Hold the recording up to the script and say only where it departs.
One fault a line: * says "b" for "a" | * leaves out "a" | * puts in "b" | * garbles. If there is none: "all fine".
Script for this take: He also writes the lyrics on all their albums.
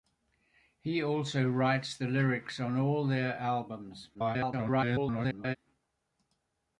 * garbles